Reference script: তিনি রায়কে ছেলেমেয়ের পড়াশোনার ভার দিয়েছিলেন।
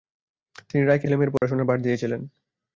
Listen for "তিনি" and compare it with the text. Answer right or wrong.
right